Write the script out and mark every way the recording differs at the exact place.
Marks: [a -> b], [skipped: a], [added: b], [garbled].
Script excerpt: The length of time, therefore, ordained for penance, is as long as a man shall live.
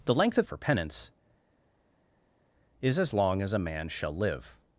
The length of [skipped: time, therefore, ordained] for penance, is as long as a man shall live.